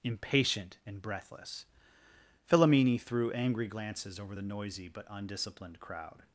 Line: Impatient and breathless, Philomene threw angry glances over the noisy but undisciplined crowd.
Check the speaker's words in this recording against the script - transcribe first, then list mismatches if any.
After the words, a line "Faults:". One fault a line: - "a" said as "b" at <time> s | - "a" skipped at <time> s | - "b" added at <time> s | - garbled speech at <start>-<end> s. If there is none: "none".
Impatient and breathless, Philomene threw angry glances over the noisy but undisciplined crowd.
Faults:
none